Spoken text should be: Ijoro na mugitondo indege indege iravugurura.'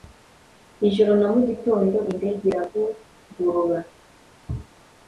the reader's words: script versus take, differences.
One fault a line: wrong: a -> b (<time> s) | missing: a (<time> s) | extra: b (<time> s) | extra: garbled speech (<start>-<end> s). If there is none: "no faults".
missing: indege (2.4 s)